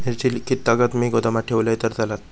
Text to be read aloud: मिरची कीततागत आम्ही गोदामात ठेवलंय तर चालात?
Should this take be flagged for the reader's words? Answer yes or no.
yes